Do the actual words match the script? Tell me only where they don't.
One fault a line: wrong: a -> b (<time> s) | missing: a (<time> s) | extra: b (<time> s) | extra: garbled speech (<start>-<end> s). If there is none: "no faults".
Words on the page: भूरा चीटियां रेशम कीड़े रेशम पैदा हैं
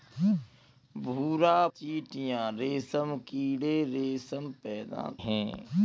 no faults